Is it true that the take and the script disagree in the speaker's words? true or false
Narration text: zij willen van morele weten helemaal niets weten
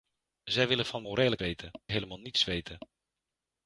false